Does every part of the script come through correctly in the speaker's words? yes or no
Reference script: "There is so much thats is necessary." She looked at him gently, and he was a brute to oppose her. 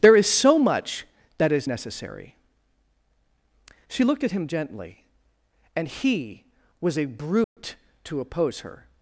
no